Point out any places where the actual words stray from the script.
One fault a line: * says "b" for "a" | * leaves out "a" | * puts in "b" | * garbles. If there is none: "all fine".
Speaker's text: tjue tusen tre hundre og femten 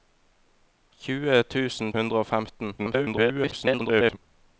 * leaves out "tre"
* garbles